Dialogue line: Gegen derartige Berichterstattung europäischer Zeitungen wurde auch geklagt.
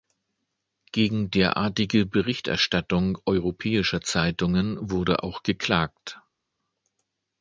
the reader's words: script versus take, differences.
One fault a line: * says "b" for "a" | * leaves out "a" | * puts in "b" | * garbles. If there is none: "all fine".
all fine